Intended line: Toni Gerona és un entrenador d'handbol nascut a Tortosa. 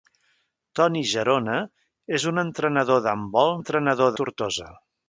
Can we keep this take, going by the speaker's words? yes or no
no